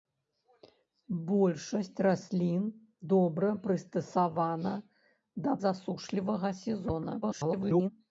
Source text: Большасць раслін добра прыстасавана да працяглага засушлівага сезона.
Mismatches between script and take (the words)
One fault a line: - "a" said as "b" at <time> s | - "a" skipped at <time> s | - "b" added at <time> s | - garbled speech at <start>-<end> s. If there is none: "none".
- "працяглага" skipped at 5.5 s
- garbled speech at 7.2-7.9 s